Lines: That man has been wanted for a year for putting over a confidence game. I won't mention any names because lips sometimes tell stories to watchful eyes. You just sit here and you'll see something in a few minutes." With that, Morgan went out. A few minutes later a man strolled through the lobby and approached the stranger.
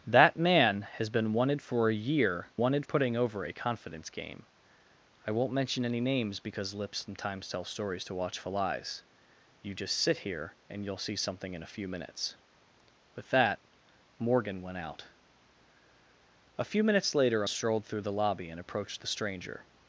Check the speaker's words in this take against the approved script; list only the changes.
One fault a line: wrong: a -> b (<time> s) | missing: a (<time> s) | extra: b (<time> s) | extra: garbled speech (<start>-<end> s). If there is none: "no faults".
wrong: for -> wanted (2.6 s)
missing: a man (17.4 s)